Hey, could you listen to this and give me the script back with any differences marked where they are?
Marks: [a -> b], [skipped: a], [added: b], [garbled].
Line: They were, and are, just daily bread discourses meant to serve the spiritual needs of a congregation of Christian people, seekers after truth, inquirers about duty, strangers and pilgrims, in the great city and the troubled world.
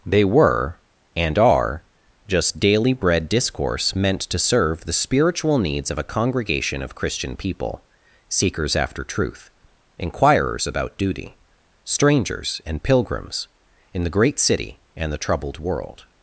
They were, and are, just daily bread [discourses -> discourse] meant to serve the spiritual needs of a congregation of Christian people, seekers after truth, inquirers about duty, strangers and pilgrims, in the great city and the troubled world.